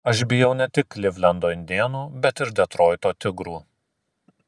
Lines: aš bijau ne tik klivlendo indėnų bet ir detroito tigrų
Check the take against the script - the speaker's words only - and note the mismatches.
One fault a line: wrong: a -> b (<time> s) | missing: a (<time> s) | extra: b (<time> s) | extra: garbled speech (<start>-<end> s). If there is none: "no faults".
no faults